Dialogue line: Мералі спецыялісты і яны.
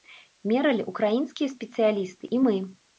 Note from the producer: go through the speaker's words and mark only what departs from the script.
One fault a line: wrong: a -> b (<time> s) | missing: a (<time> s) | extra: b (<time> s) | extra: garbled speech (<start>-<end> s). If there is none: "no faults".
extra: ўкраінскія (0.9 s)
wrong: яны -> мы (2.4 s)